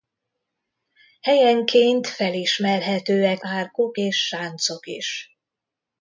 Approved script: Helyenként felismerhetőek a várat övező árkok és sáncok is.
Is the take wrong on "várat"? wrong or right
wrong